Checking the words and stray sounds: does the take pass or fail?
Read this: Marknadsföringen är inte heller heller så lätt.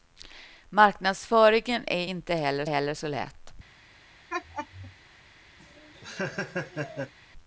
fail